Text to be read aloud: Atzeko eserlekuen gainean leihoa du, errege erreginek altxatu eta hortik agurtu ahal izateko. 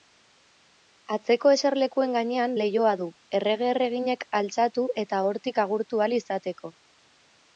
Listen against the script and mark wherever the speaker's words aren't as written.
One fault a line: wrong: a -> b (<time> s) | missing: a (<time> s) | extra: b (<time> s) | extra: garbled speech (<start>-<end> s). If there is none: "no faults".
no faults